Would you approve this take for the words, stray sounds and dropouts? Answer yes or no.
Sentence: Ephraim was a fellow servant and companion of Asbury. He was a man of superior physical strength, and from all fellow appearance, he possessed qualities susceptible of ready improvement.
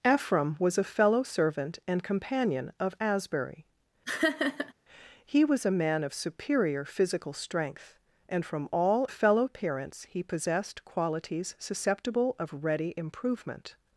no